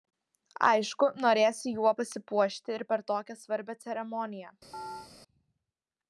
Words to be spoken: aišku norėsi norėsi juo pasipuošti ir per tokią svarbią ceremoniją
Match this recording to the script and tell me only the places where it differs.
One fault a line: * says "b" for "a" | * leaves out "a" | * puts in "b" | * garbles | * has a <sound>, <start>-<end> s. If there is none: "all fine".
* leaves out "norėsi"
* has a chirp, 4.7-5.1 s